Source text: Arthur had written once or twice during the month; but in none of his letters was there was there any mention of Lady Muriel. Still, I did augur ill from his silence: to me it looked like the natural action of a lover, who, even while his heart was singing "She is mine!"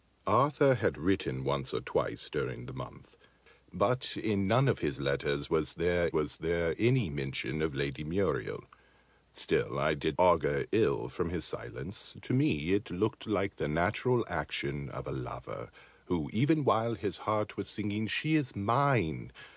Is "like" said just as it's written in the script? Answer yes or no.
yes